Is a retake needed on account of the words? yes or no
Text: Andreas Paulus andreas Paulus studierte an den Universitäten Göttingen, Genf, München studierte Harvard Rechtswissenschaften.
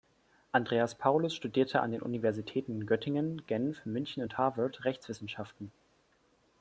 yes